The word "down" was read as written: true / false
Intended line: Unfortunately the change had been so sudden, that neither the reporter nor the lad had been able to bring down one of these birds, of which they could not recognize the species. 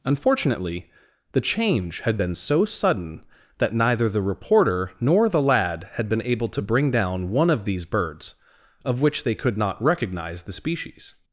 true